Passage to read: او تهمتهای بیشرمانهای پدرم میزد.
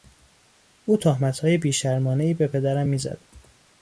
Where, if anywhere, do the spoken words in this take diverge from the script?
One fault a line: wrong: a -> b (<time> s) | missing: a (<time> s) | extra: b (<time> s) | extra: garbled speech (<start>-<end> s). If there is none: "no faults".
extra: به (2.3 s)